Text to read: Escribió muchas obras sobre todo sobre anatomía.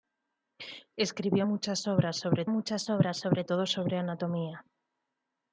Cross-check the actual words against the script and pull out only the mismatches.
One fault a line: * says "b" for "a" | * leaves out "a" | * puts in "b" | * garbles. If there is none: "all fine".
* puts in "muchas obras sobre"